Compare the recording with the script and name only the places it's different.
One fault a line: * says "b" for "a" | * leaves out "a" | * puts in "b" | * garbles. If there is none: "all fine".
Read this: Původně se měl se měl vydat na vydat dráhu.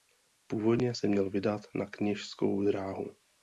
* leaves out "se měl"
* says "kněžskou" for "vydat"